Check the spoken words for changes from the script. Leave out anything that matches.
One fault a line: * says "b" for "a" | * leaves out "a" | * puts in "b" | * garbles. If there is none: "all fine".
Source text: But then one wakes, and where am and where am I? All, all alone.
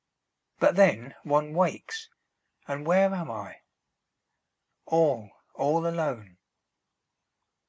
* leaves out "and where am"